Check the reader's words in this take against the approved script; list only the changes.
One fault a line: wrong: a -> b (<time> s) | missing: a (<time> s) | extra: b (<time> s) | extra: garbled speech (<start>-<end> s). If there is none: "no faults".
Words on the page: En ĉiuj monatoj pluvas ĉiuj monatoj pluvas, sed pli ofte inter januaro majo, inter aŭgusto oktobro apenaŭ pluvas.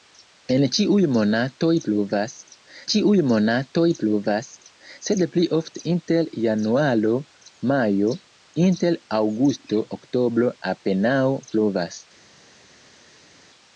no faults